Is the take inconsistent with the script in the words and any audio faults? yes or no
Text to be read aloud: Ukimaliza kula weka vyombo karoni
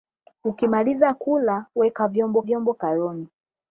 yes